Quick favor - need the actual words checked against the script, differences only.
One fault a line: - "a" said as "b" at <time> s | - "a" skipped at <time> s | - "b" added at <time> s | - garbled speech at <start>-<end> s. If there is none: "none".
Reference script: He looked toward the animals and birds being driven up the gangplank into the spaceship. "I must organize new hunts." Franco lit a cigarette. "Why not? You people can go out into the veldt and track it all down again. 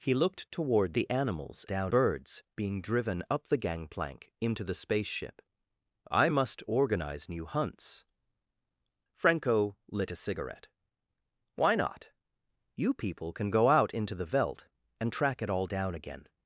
- "and" said as "down" at 1.7 s